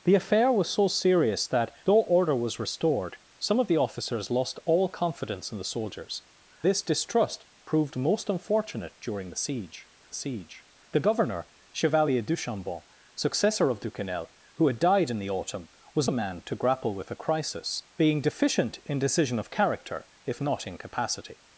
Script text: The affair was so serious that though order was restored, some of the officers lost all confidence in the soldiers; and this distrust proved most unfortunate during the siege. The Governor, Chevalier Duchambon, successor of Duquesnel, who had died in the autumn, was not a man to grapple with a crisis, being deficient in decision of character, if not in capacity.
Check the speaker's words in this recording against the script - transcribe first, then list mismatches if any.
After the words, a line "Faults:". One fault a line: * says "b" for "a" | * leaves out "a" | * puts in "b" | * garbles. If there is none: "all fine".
The affair was so serious that though order was restored, some of the officers lost all confidence in the soldiers; this distrust proved most unfortunate during the siege siege. The Governor, Chevalier Duchambon, successor of Duquesnel, who had died in the autumn, was a man to grapple with a crisis, being deficient in decision of character, if not in capacity.
Faults:
* leaves out "and"
* puts in "siege"
* leaves out "not"